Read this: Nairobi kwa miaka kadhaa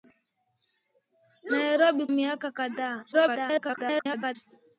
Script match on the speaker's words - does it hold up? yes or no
no